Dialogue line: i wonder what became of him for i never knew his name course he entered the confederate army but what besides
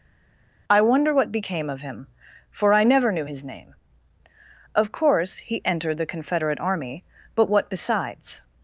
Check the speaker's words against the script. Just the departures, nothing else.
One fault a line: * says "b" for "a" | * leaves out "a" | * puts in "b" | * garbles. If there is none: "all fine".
* puts in "of"